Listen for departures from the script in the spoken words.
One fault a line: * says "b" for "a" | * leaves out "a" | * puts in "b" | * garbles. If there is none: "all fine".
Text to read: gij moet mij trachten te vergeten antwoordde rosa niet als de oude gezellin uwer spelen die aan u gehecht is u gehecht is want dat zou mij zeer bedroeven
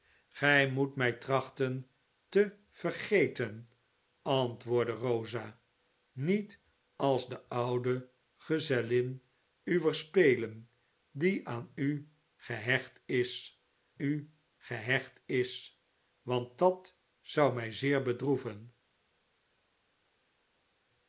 all fine